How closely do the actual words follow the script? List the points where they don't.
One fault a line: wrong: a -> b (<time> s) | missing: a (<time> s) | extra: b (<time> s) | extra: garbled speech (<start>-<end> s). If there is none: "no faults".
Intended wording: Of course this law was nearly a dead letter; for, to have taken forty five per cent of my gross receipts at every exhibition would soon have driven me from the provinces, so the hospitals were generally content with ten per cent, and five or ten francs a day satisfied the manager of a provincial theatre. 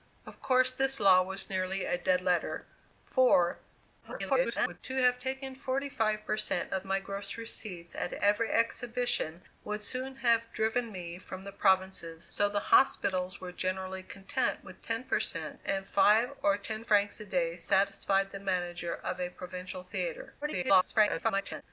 extra: garbled speech (4.0-4.8 s)
extra: garbled speech (20.4-21.6 s)